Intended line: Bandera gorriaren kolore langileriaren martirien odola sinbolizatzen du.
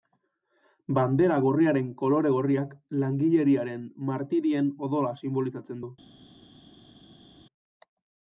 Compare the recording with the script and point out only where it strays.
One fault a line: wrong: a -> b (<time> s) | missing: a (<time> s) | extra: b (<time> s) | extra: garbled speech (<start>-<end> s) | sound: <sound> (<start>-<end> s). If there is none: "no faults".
extra: gorriak (2.4 s)